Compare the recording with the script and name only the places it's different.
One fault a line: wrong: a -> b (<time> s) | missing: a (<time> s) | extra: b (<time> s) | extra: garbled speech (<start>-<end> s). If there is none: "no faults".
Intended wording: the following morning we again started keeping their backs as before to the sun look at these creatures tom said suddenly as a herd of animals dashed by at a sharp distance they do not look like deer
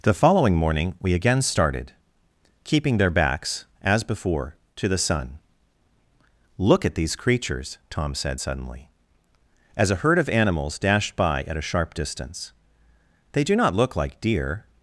no faults